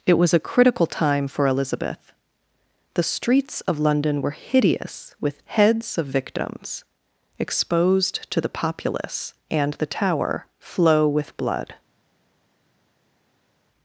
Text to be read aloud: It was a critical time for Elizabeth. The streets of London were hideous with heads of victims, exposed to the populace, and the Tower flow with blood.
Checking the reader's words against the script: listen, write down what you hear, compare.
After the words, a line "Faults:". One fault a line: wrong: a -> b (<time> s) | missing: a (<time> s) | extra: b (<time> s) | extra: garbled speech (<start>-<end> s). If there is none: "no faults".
It was a critical time for Elizabeth. The streets of London were hideous with heads of victims, exposed to the populace, and the Tower flow with blood.
Faults:
no faults